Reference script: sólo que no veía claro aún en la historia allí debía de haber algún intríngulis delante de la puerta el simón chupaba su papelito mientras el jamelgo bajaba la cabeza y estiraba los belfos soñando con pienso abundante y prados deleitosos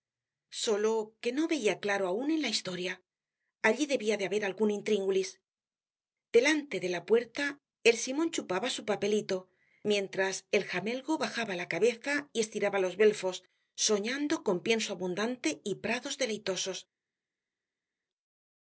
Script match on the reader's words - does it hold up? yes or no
yes